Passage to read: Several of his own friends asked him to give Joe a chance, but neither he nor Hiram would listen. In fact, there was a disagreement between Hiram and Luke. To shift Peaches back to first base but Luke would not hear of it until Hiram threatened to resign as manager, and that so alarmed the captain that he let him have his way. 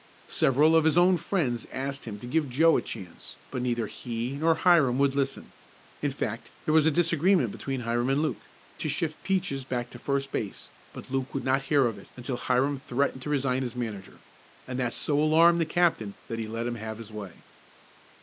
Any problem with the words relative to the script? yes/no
no